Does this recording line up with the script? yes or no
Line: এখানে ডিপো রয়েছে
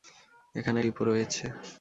yes